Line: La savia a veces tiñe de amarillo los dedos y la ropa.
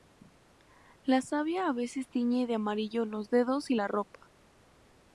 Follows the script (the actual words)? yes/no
yes